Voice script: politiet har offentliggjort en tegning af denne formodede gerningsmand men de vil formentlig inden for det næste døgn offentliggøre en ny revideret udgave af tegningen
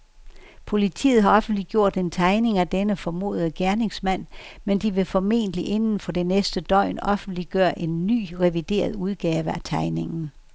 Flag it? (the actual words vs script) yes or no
no